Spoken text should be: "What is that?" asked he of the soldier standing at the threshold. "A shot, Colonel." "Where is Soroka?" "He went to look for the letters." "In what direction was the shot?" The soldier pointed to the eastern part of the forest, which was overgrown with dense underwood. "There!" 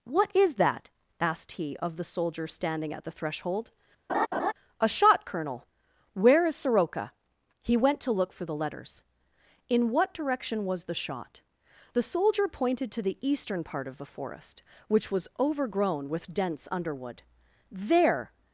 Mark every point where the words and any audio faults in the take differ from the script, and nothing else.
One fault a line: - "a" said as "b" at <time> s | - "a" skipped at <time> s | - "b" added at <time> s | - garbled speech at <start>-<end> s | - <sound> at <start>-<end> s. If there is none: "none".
- laugh at 4.1-4.5 s